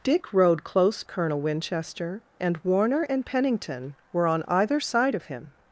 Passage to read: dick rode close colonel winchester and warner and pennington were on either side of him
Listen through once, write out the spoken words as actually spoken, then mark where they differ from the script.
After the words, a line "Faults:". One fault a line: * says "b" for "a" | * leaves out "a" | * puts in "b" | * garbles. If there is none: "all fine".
dick rode close colonel winchester and warner and pennington were on either side of him
Faults:
all fine